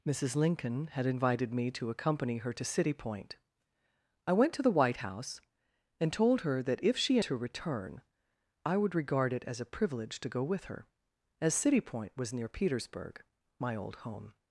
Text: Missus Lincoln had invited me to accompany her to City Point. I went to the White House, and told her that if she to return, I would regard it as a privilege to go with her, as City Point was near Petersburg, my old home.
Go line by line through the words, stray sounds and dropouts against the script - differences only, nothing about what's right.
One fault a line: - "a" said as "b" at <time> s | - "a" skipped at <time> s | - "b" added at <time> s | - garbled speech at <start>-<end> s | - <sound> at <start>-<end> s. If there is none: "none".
none